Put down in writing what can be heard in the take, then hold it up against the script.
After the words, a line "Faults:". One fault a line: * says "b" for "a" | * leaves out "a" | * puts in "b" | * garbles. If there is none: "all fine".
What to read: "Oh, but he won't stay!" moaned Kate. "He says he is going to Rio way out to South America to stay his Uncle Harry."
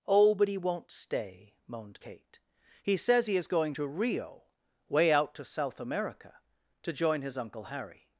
"Oh, but he won't stay!" moaned Kate. "He says he is going to Rio way out to South America to join his Uncle Harry."
Faults:
* says "join" for "stay"